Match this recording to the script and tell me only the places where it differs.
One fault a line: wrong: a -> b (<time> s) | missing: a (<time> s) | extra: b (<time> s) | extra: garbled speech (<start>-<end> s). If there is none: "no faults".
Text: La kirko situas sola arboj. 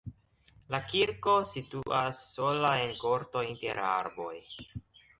extra: en korto inter (2.9 s)